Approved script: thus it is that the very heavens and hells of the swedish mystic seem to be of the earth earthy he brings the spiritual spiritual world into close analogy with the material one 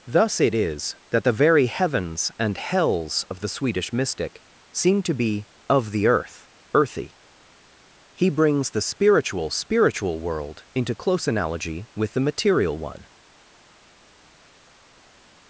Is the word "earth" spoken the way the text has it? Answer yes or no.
yes